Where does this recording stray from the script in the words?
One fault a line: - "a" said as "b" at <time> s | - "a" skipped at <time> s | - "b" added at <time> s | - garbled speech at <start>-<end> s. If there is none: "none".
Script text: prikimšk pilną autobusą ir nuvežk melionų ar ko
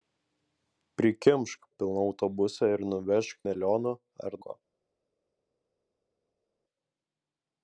none